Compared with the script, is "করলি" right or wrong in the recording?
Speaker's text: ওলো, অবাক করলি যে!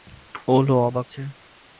wrong